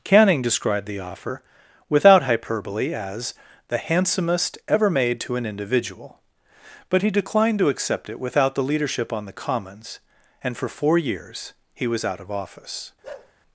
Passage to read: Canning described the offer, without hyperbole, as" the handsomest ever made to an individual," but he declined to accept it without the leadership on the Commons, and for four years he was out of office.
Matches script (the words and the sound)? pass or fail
fail